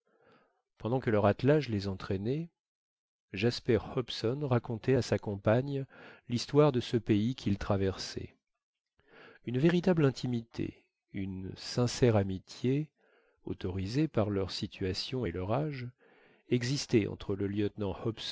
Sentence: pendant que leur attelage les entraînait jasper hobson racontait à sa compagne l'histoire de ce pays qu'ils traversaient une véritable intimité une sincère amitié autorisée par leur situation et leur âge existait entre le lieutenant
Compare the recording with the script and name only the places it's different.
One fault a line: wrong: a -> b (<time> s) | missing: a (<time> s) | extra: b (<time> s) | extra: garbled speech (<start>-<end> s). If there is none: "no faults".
no faults